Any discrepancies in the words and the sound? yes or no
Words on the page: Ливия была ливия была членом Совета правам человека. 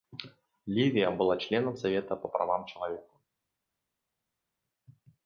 yes